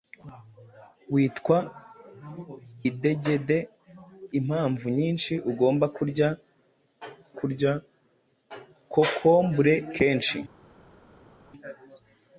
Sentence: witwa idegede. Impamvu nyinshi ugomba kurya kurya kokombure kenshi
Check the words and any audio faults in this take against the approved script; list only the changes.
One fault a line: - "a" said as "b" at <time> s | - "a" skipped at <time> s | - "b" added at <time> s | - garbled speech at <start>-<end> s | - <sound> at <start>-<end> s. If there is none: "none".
none